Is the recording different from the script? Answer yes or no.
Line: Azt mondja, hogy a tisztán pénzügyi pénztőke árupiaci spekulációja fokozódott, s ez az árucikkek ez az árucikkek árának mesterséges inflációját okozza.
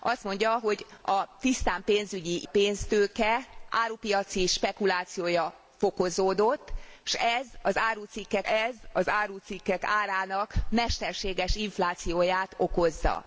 no